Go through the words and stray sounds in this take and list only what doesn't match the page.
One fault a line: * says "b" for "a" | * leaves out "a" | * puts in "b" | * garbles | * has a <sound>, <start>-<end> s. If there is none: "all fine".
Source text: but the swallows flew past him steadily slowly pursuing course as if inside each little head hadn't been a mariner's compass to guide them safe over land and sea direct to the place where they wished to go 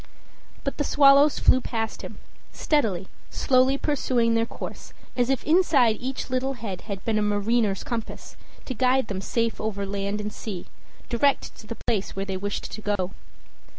* puts in "their"
* says "had" for "hadn't"
* has a dropout, 13.0-13.0 s